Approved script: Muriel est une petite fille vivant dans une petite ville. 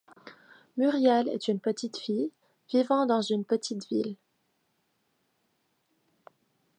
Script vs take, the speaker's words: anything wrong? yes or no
no